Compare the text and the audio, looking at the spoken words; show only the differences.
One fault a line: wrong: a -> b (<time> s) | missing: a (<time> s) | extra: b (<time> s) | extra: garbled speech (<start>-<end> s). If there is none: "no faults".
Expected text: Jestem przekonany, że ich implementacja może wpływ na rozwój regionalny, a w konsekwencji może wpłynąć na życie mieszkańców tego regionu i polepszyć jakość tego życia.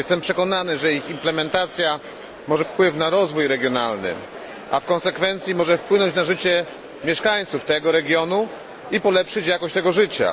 no faults